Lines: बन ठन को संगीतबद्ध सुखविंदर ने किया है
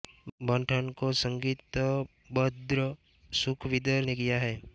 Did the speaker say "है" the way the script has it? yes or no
yes